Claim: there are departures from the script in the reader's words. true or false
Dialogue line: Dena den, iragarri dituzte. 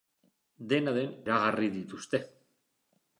false